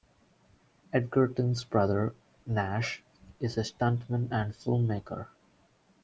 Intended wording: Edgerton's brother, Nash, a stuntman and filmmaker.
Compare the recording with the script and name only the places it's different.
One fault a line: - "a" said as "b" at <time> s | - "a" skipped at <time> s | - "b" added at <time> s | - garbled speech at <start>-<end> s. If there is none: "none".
- "is" added at 3.4 s